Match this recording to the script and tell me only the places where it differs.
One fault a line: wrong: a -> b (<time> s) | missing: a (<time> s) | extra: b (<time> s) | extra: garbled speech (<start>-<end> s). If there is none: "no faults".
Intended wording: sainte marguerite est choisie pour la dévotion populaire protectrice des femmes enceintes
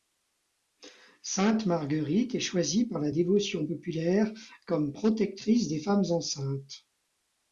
wrong: pour -> par (2.9 s)
extra: comme (4.7 s)